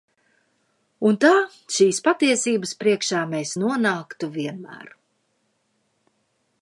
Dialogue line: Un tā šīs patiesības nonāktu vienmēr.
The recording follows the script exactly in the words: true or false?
false